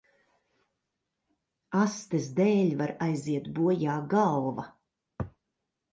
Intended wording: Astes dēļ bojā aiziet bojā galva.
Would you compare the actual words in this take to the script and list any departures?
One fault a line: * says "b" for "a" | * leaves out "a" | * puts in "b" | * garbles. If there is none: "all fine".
* says "var" for "bojā"